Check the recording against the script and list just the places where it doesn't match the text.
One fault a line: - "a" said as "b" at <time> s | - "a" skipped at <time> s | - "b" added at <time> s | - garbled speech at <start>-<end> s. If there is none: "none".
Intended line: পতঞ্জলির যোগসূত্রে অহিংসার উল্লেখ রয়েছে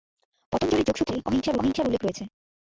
- "অহিংসার" added at 1.6 s